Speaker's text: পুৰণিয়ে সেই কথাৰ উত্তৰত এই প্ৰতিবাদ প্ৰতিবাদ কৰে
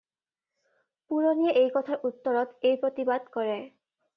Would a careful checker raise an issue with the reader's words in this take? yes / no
yes